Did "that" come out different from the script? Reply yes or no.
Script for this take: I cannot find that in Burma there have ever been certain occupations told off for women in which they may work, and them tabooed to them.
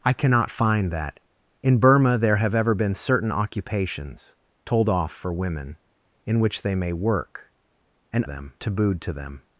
no